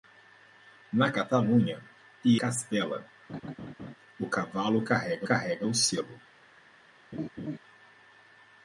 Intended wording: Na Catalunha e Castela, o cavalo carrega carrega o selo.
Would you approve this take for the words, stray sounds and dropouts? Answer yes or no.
no